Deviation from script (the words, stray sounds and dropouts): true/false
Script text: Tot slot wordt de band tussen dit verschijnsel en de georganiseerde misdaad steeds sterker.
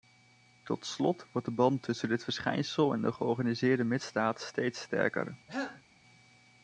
true